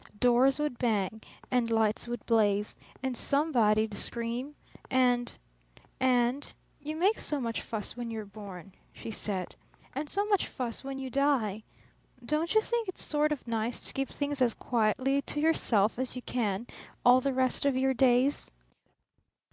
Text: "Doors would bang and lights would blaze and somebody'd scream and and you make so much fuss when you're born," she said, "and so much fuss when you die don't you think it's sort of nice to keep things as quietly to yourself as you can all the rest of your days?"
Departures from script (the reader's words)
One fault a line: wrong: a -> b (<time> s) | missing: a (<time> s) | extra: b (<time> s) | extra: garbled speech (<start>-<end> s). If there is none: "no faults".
no faults